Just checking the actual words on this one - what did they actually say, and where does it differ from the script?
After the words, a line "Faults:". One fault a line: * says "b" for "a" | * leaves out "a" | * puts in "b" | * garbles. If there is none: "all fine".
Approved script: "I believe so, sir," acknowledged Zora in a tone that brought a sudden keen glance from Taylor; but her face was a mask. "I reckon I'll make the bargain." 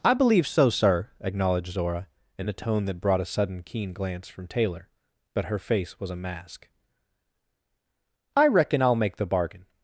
"I believe so, sir," acknowledged Zora in a tone that brought a sudden keen glance from Taylor; but her face was a mask. "I reckon I'll make the bargain."
Faults:
all fine